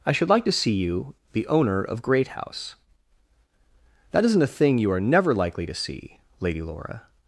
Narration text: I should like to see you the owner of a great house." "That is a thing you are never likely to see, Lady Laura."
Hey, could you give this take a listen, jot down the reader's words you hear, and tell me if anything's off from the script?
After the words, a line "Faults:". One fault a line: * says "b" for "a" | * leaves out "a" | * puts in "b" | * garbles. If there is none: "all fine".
I should like to see you the owner of great house." "That isn't a thing you are never likely to see, Lady Laura."
Faults:
* leaves out "a"
* says "isn't" for "is"